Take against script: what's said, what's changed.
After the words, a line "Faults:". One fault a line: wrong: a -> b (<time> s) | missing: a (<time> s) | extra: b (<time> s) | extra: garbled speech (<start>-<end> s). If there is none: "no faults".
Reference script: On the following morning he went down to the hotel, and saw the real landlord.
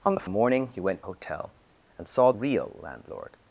On the morning he went hotel, and saw real landlord.
Faults:
missing: following (0.3 s)
missing: down to the (1.0 s)
missing: the (2.3 s)